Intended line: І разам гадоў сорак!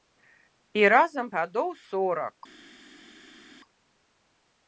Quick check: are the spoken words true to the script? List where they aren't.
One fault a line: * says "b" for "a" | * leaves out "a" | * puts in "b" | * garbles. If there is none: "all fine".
all fine